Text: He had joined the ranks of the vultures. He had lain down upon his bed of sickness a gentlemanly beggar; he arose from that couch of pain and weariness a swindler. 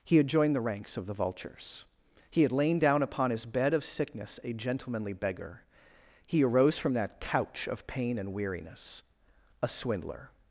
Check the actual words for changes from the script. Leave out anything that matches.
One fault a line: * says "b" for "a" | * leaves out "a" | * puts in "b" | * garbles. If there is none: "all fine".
all fine